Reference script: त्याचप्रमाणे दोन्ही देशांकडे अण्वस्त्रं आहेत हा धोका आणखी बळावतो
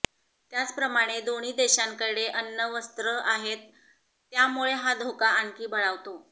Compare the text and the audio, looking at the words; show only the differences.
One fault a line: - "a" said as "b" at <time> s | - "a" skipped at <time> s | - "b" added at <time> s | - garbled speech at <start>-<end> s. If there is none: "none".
- "त्यामुळे" added at 4.3 s